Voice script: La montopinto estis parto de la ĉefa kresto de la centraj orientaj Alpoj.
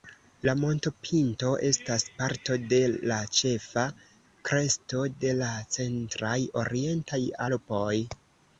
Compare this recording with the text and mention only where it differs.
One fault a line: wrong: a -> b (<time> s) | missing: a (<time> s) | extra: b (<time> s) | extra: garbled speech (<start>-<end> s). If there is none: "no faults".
wrong: estis -> estas (1.7 s)